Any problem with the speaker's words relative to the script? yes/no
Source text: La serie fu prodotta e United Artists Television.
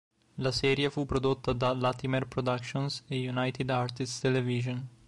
yes